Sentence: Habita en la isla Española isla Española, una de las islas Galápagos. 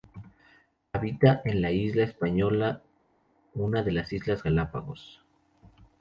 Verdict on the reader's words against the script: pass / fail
fail